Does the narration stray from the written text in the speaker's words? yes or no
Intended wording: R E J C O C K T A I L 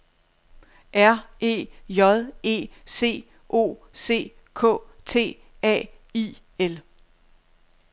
yes